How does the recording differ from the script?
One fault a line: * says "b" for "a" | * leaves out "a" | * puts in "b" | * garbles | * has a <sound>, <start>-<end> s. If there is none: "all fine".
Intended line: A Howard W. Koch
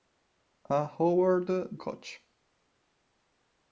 * leaves out "W"